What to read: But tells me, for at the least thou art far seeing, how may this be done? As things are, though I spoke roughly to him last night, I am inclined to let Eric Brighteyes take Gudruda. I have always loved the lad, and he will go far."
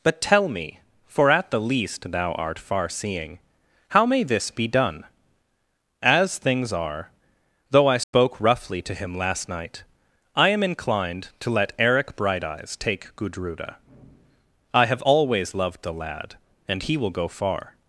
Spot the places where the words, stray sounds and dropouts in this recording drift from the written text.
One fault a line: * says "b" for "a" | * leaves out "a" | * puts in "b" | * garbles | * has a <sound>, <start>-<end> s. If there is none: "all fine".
* says "tell" for "tells"
* has a dropout, 8.0-8.1 s